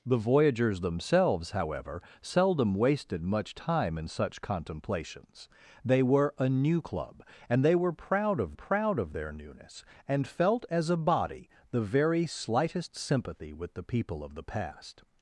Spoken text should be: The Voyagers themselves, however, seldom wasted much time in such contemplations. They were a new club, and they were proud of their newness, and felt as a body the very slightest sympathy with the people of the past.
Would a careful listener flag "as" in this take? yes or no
no